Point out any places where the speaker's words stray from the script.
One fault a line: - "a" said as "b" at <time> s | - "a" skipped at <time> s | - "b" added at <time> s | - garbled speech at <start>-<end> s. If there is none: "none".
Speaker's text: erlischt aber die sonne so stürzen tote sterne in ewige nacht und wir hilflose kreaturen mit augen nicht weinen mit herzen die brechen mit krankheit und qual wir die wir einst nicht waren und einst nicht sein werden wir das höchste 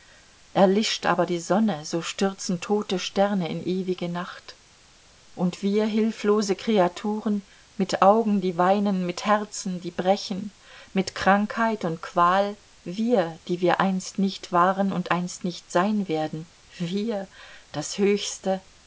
- "nicht" said as "die" at 8.4 s